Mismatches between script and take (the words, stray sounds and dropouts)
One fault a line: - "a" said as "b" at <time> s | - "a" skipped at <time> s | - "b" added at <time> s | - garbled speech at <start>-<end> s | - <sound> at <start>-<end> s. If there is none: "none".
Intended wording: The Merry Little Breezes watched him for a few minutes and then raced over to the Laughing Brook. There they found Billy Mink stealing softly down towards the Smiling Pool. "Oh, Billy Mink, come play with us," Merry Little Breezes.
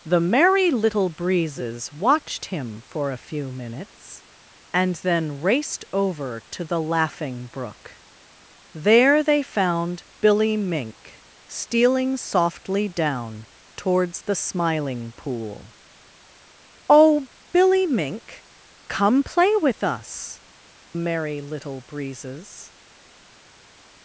none